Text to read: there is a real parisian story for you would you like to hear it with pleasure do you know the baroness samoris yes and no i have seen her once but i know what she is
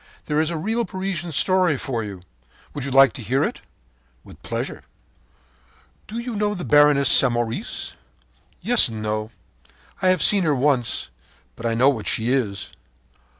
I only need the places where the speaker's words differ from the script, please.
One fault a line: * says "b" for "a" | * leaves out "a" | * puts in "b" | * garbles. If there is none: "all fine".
all fine